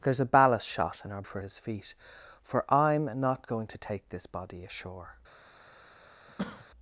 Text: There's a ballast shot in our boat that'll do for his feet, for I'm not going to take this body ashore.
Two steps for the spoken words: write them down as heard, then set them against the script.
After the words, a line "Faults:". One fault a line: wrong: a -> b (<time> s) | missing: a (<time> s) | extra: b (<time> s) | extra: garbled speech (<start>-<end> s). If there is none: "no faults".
There's a ballast shot in our for his feet, for I'm not going to take this body ashore.
Faults:
missing: boat that'll do (1.2 s)